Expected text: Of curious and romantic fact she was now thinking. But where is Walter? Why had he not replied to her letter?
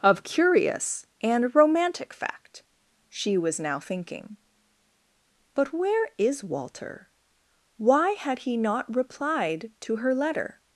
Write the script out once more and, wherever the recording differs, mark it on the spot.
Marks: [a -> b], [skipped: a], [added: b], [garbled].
Of curious and romantic fact she was now thinking. But where is Walter? Why had he not replied to her letter?